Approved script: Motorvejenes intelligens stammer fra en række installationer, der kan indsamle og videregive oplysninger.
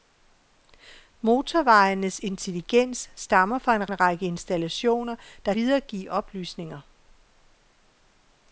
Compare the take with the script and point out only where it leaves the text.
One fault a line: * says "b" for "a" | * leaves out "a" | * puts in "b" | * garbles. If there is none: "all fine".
* puts in "en"
* leaves out "kan indsamle og"